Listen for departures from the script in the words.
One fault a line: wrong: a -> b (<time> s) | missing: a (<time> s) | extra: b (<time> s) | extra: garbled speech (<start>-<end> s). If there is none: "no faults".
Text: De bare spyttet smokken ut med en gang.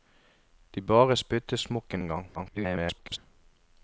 missing: ut med (2.0 s)
extra: garbled speech (2.3-3.2 s)